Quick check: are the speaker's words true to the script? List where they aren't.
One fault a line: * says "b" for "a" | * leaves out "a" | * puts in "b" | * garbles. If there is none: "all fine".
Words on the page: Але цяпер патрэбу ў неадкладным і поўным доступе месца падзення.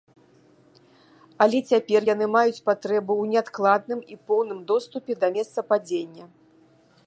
* puts in "яны маюць"
* puts in "да"